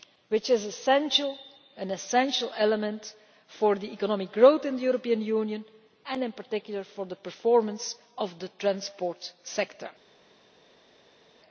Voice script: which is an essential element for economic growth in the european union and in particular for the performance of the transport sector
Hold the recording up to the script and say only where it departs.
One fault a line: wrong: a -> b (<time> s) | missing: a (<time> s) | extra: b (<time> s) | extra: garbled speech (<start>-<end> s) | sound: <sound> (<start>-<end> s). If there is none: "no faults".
no faults